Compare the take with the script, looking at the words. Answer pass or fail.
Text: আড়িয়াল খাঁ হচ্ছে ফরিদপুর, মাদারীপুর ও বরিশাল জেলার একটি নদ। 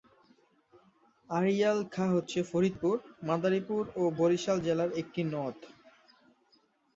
pass